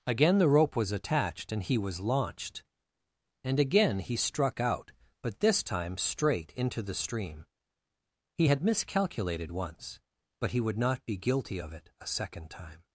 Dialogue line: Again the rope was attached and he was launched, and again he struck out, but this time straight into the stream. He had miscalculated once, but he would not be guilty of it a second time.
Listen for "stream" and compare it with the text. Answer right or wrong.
right